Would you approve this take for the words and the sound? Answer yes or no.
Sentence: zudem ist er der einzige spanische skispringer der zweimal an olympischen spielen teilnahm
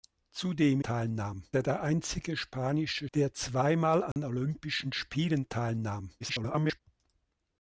no